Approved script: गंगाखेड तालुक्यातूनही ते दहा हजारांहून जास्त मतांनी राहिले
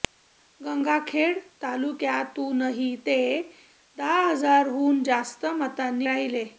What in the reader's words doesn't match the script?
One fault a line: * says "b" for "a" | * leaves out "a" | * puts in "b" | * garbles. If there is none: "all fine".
all fine